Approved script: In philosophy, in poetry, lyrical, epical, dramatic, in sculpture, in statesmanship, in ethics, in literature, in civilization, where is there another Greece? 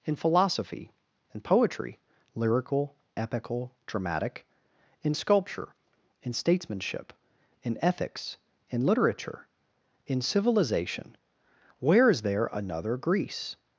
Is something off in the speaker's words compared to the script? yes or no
no